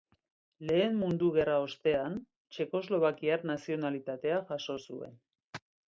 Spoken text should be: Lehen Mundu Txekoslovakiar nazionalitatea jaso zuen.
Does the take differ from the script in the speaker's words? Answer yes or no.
yes